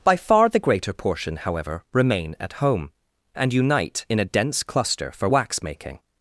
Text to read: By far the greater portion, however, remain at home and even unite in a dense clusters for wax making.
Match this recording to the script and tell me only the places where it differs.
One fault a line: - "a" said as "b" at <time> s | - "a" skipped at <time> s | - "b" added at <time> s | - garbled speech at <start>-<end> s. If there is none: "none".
- "even" skipped at 3.5 s
- "clusters" said as "cluster" at 4.6 s